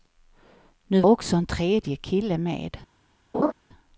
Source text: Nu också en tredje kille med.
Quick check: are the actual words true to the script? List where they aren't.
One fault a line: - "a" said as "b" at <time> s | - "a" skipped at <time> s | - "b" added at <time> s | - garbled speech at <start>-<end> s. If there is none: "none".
none